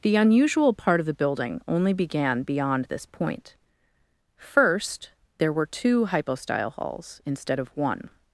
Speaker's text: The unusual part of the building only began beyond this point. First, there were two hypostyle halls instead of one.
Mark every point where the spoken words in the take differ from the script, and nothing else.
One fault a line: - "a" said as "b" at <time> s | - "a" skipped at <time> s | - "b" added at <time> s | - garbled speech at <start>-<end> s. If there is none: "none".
none